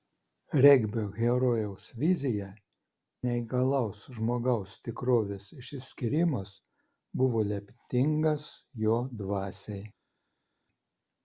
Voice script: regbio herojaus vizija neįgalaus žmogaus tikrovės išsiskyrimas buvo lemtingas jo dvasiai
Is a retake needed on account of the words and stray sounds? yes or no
no